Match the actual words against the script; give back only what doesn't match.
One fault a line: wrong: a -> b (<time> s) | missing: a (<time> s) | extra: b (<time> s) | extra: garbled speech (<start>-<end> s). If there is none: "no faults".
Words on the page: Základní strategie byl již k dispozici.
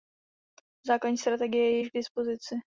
wrong: byl -> je (1.7 s)